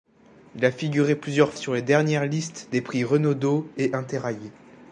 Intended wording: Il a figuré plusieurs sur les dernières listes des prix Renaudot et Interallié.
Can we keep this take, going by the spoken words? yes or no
yes